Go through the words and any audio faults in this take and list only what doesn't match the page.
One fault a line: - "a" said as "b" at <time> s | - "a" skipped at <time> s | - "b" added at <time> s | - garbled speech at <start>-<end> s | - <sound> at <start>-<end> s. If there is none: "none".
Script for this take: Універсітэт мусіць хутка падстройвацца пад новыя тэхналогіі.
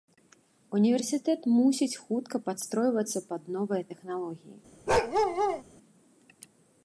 - bark at 4.9-5.6 s